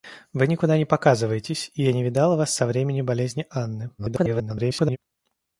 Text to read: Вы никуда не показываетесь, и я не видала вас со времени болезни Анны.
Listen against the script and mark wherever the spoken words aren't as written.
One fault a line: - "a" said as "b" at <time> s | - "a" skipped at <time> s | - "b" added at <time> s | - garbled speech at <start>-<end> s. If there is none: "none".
- garbled speech at 4.0-5.0 s